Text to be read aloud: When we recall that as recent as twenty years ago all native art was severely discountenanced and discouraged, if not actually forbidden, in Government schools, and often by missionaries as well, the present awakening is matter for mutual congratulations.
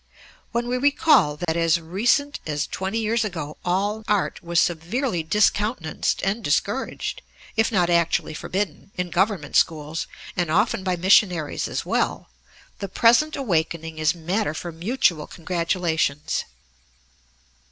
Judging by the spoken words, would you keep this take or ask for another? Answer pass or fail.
fail